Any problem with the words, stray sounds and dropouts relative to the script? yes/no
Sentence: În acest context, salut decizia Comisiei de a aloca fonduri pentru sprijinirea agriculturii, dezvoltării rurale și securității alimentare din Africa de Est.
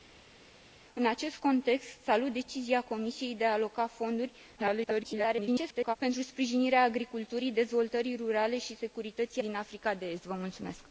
yes